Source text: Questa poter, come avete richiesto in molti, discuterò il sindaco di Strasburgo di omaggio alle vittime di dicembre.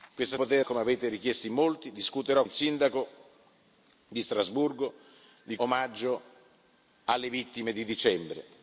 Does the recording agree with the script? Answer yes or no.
yes